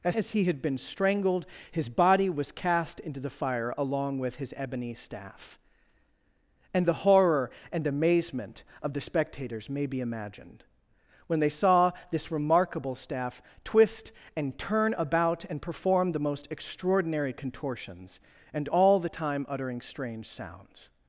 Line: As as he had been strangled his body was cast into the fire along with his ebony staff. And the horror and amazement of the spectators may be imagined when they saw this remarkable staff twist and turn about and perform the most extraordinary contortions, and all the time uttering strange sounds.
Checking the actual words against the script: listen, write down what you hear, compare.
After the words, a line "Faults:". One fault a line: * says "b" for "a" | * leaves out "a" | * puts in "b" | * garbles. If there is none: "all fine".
As as he had been strangled his body was cast into the fire along with his ebony staff. And the horror and amazement of the spectators may be imagined when they saw this remarkable staff twist and turn about and perform the most extraordinary contortions, and all the time uttering strange sounds.
Faults:
all fine